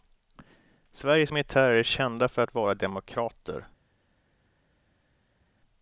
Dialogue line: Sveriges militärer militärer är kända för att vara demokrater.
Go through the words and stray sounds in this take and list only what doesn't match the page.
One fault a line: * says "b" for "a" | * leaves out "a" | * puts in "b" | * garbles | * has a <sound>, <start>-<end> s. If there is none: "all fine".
* leaves out "militärer"